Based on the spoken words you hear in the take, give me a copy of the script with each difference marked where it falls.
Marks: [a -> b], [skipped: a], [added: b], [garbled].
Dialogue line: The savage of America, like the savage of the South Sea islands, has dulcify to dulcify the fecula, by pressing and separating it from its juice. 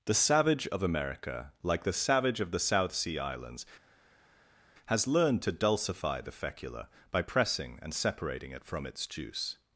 The savage of America, like the savage of the South Sea islands, has [dulcify -> learned] to dulcify the fecula, by pressing and separating it from its juice.